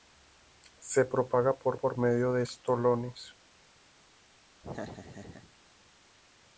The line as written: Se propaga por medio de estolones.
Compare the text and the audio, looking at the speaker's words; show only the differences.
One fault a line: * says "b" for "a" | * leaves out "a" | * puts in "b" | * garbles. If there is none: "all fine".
* puts in "por"